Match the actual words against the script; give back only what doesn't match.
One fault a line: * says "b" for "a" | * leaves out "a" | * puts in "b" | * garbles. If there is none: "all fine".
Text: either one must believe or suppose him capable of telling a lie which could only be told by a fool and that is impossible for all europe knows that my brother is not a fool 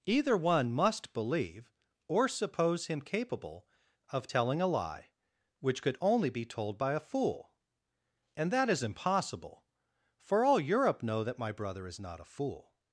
* says "know" for "knows"